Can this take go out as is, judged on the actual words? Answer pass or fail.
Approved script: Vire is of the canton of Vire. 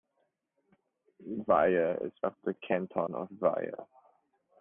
pass